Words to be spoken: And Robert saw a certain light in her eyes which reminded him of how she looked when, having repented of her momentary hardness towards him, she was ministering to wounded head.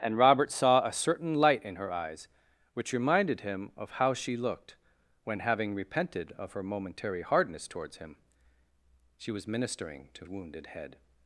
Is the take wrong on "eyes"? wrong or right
right